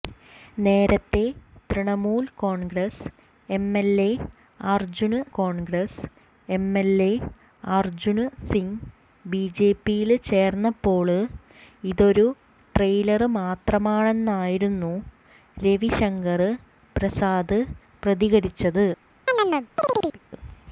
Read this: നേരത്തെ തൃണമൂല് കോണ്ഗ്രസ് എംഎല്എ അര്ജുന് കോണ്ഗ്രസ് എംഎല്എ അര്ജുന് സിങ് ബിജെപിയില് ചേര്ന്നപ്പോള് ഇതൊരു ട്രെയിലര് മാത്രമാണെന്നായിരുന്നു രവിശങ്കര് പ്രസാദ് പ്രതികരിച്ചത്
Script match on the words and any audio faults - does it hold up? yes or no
no